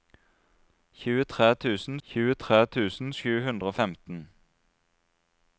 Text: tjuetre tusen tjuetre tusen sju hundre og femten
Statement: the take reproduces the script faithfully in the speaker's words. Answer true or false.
true